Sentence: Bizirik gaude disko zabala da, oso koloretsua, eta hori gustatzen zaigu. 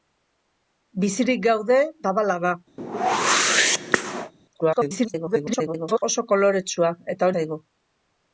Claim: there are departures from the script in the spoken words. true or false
true